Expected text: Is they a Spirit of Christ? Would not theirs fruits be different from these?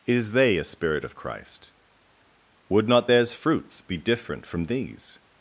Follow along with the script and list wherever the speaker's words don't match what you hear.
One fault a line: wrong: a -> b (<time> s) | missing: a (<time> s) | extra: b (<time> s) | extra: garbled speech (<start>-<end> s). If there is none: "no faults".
no faults